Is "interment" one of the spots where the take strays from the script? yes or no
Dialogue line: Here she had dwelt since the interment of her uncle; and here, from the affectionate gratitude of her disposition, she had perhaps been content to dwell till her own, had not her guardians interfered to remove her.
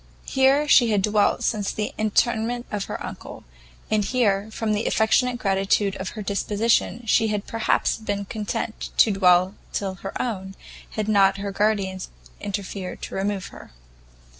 no